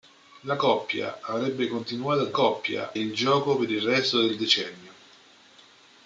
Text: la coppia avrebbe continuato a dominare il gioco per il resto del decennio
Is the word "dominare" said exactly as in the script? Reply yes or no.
no